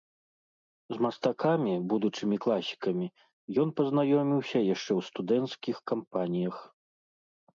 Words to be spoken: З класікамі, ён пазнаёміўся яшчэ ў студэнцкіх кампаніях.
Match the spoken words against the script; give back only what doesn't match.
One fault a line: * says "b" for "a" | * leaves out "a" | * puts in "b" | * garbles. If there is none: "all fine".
* puts in "мастакамі будучымі"